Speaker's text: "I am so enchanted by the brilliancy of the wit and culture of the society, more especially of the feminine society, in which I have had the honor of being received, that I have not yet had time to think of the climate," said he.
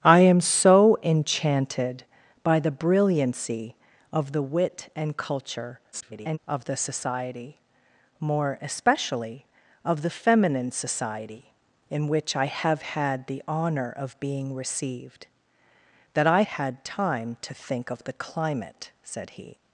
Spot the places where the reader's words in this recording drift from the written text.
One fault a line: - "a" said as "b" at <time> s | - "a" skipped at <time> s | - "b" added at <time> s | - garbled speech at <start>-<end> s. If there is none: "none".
- garbled speech at 5.9-6.4 s
- "have not yet" skipped at 16.4 s